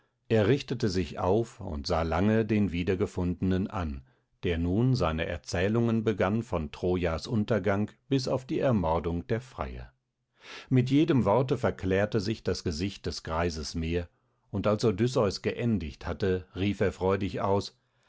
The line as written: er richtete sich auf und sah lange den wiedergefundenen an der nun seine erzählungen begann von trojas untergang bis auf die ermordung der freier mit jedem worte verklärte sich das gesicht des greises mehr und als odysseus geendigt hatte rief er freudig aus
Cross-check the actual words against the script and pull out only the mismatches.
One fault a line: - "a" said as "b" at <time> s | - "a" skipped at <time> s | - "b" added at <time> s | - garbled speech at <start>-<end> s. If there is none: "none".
none